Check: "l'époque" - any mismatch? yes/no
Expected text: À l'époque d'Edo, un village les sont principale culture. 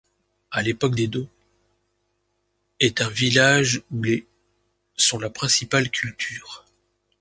no